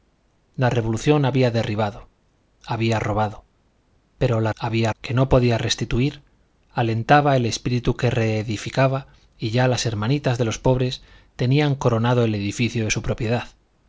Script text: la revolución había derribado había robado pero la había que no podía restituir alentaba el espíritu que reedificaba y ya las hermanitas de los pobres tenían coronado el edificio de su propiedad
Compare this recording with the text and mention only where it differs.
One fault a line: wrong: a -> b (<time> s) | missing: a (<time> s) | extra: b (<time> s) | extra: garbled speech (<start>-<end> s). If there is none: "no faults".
no faults